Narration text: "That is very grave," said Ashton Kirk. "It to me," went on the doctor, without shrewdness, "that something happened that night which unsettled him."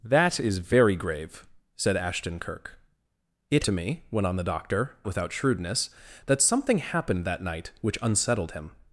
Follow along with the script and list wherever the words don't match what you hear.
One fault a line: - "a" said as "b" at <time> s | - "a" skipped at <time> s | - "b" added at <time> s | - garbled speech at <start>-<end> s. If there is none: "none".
none